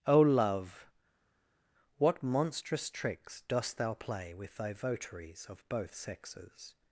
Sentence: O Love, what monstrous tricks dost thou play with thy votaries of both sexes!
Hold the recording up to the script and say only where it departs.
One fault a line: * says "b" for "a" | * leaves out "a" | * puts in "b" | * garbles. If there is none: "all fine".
all fine